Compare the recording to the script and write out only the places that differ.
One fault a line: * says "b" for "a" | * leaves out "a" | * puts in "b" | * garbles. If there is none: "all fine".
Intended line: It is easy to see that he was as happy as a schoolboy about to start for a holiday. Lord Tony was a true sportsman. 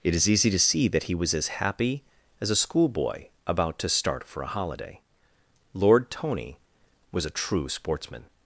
all fine